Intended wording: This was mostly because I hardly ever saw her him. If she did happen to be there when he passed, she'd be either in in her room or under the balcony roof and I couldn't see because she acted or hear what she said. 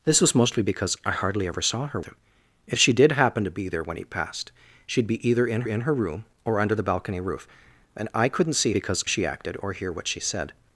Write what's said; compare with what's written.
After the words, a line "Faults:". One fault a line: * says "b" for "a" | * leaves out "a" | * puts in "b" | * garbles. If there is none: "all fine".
This was mostly because I hardly ever saw her him. If she did happen to be there when he passed, she'd be either in in her room or under the balcony roof and I couldn't see because she acted or hear what she said.
Faults:
all fine